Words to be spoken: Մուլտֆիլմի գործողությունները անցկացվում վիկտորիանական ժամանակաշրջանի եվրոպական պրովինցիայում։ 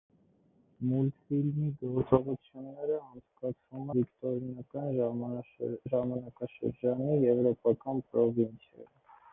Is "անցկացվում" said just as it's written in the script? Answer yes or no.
yes